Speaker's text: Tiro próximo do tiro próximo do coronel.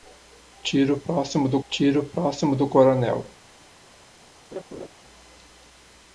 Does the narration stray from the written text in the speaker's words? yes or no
no